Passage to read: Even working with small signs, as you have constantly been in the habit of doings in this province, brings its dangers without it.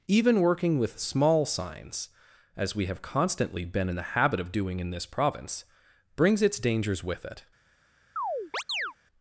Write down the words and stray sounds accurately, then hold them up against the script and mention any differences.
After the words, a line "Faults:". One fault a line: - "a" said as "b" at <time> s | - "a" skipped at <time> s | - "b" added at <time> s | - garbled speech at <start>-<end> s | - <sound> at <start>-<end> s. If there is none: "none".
Even working with small signs, as we have constantly been in the habit of doing in this province, brings its dangers with it.
Faults:
- "you" said as "we" at 2.8 s
- "doings" said as "doing" at 4.5 s
- "without" said as "with" at 7.0 s
- chirp at 8.2-8.9 s